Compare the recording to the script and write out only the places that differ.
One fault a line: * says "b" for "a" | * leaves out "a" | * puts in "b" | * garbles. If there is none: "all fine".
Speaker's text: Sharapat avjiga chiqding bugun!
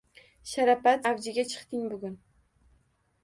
all fine